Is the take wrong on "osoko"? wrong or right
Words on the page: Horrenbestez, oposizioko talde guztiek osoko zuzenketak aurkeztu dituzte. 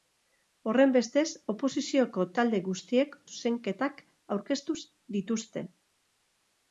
wrong